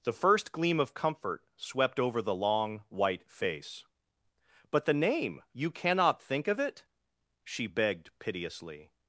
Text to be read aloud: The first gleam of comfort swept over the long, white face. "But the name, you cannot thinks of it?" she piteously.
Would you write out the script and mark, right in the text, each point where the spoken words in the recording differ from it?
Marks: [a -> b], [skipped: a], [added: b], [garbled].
The first gleam of comfort swept over the long, white face. "But the name, you cannot [thinks -> think] of it?" she [added: begged] piteously.